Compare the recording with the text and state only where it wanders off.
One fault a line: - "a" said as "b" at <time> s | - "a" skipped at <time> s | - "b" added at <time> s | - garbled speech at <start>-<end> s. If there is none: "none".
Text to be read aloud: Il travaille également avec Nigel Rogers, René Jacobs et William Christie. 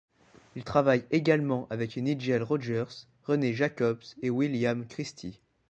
none